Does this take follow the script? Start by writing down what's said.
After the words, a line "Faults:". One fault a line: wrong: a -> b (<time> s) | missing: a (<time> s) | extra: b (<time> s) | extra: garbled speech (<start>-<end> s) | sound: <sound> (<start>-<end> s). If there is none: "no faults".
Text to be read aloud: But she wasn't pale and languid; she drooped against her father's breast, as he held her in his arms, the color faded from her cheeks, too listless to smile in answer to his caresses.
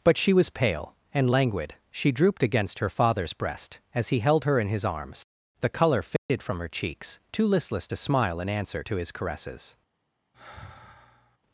But she was pale and languid; she drooped against her father's breast, as he held her in his arms, the color faded from her cheeks, too listless to smile in answer to his caresses.
Faults:
wrong: wasn't -> was (0.3 s)
sound: dropout (6.2-6.3 s)
sound: sigh (10.3-11.4 s)